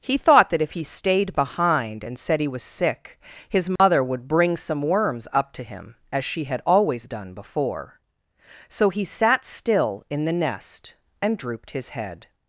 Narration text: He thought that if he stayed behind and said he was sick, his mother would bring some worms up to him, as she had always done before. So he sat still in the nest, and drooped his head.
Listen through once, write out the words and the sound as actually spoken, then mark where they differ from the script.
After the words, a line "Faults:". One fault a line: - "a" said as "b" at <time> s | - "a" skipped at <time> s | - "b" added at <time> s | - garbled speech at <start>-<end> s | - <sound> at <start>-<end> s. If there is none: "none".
He thought that if he stayed behind and said he was sick, his mother would bring some worms up to him, as she had always done before. So he sat still in the nest, and drooped his head.
Faults:
- dropout at 3.8-3.8 s